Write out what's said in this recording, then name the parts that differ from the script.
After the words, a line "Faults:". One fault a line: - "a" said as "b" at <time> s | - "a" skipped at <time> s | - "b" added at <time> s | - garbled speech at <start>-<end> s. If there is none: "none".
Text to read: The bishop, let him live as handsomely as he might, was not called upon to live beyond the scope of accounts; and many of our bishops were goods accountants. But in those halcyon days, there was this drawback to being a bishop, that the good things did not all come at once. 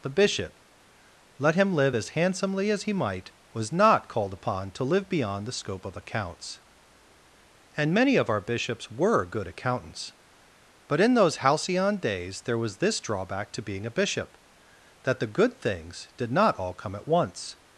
The bishop, let him live as handsomely as he might, was not called upon to live beyond the scope of accounts; and many of our bishops were good accountants. But in those halcyon days, there was this drawback to being a bishop, that the good things did not all come at once.
Faults:
- "goods" said as "good" at 9.2 s